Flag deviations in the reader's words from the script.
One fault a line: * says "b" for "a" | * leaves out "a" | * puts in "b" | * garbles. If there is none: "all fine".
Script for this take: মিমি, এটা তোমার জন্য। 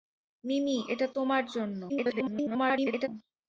* garbles